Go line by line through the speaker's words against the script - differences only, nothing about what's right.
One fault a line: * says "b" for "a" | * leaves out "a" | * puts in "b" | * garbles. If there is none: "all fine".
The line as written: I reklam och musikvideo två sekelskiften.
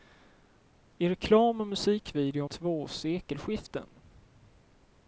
all fine